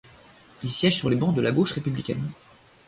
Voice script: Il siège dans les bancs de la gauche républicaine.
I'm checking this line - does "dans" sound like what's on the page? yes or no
no